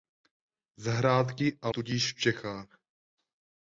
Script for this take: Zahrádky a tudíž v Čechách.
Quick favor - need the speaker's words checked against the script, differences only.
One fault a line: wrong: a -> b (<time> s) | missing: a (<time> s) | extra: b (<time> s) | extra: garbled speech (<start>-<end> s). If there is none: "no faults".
no faults